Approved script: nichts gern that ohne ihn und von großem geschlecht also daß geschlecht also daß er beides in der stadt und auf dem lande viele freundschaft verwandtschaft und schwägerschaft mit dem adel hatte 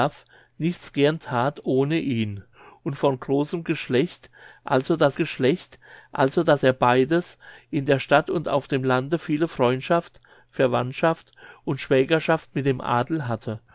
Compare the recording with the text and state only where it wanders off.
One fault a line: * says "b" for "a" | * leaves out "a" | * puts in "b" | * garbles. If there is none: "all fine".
all fine